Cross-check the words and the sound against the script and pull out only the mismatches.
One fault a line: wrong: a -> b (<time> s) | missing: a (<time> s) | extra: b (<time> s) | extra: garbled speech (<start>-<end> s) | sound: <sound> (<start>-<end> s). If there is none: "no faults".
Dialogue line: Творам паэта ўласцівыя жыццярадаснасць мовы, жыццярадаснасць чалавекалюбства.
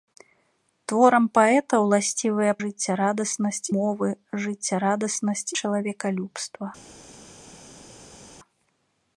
no faults